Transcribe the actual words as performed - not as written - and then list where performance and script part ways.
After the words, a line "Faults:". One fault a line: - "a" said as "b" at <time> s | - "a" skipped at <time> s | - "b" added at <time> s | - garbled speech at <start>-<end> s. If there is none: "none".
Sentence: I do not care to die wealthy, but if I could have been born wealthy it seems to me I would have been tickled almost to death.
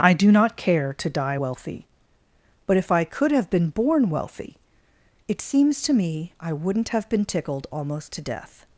I do not care to die wealthy, but if I could have been born wealthy it seems to me I wouldn't have been tickled almost to death.
Faults:
- "would" said as "wouldn't" at 6.5 s